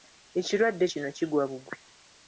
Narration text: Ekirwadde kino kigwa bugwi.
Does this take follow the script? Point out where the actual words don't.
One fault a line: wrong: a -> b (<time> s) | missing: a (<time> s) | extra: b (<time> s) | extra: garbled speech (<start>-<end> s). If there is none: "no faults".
no faults